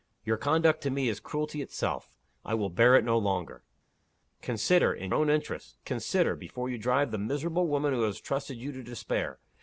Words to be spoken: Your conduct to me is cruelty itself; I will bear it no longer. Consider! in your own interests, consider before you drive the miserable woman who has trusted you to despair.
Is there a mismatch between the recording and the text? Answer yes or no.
yes